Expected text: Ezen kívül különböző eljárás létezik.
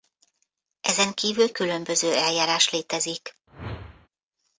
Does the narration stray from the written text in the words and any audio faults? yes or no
yes